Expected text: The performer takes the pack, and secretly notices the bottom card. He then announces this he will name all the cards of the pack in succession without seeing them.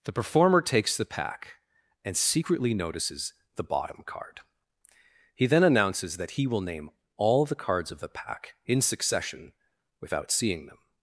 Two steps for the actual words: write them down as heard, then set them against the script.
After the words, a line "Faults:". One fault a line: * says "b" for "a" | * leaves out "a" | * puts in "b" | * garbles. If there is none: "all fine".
The performer takes the pack, and secretly notices the bottom card. He then announces that he will name all the cards of the pack in succession without seeing them.
Faults:
* says "that" for "this"